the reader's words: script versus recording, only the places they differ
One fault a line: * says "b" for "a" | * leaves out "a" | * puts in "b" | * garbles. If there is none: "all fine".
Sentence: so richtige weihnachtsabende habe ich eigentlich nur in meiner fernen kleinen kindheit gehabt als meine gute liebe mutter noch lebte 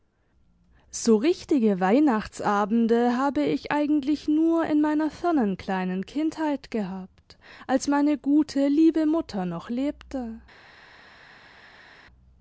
all fine